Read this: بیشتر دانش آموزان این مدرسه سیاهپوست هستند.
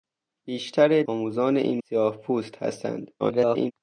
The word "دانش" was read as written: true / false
false